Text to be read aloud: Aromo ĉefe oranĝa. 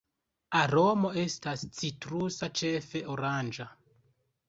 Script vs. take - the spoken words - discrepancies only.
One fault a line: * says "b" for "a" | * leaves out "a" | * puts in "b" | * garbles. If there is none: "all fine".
* puts in "estas citrusa"